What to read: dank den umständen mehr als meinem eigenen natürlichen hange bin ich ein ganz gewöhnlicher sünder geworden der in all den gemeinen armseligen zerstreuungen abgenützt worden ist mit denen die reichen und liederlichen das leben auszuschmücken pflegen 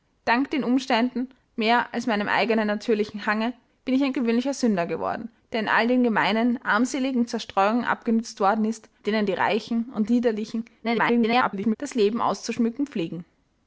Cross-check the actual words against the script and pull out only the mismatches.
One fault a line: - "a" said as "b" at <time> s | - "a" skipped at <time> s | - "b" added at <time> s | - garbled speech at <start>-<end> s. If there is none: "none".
- "ganz" skipped at 4.1 s
- "mit" skipped at 8.9 s
- garbled speech at 10.8-11.8 s